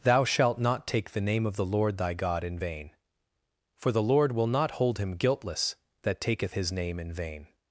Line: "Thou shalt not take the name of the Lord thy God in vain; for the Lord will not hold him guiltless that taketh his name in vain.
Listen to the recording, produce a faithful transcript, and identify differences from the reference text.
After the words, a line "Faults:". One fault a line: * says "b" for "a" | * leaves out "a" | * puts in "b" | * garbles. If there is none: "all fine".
"Thou shalt not take the name of the Lord thy God in vain; for the Lord will not hold him guiltless that taketh his name in vain.
Faults:
all fine